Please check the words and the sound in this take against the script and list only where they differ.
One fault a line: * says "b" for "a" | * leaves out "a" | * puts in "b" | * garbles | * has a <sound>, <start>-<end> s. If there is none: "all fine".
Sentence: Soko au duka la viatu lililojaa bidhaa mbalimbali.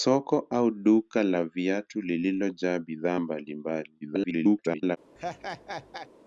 * garbles
* has a laugh, 5.2-6.1 s